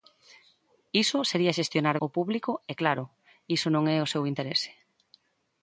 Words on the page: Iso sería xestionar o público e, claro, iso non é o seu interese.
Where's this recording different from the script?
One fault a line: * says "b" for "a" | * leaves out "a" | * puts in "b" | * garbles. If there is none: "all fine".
all fine